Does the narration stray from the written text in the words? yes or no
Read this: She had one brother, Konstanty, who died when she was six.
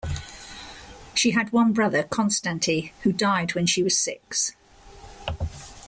no